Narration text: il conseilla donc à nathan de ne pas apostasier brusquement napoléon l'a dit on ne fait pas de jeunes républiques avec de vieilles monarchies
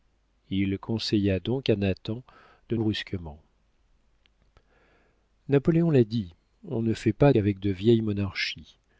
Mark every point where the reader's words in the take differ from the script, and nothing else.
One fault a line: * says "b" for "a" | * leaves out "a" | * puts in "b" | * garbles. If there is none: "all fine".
* leaves out "ne pas apostasier"
* leaves out "de jeunes républiques"